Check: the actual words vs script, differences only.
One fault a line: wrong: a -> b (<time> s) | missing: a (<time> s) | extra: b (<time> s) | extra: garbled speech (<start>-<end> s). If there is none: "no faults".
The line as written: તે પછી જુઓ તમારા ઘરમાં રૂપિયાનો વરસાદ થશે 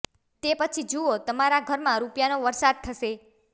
no faults